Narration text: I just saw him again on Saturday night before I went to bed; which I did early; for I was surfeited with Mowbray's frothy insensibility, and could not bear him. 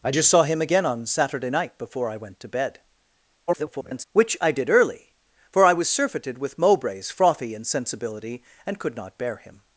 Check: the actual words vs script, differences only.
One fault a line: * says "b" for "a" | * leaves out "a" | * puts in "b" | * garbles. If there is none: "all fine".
* garbles